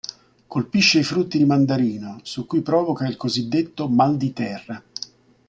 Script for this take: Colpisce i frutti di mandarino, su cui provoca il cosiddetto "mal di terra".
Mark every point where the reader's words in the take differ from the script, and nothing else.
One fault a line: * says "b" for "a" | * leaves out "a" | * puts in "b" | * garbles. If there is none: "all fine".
all fine